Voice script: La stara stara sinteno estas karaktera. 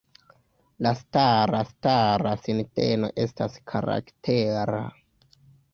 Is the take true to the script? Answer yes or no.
yes